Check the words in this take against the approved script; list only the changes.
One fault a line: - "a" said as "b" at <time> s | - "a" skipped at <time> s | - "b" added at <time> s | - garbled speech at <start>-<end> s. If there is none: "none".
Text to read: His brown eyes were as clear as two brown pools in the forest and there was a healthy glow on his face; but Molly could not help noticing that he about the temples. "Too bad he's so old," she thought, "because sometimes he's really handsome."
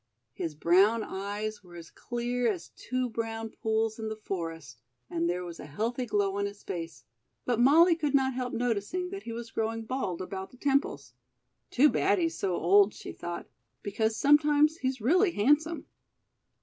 - "was growing bald" added at 9.3 s